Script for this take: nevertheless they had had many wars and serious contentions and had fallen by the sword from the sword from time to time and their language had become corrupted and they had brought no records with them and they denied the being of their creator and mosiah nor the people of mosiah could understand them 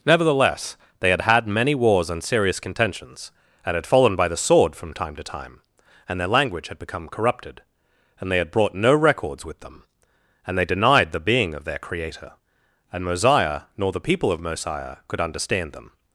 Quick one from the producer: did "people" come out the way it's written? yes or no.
yes